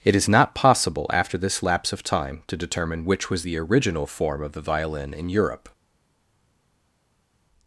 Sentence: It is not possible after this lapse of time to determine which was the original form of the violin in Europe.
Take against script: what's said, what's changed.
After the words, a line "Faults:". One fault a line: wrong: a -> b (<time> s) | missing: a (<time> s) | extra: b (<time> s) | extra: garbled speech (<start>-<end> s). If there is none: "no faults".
It is not possible after this lapse of time to determine which was the original form of the violin in Europe.
Faults:
no faults